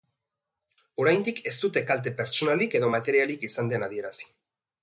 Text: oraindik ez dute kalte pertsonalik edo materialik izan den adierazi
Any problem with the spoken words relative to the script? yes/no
no